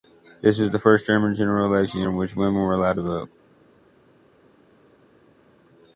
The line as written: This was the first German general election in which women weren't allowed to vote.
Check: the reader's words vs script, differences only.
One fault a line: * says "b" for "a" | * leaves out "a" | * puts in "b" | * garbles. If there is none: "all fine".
* says "were" for "weren't"